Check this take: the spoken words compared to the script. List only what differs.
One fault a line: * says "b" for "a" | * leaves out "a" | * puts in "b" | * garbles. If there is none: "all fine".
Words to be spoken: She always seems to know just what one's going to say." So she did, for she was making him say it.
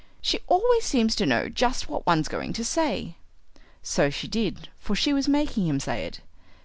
all fine